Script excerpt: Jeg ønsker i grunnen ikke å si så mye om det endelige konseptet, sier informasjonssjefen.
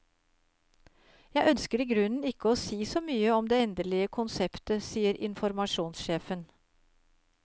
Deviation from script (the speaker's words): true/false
false